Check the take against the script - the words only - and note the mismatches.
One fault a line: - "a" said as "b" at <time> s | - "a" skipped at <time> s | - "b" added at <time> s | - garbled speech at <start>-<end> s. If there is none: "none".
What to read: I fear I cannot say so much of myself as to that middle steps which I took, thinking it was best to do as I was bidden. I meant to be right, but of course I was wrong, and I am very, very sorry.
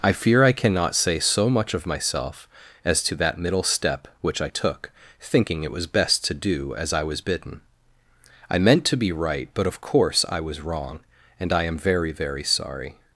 - "steps" said as "step" at 3.6 s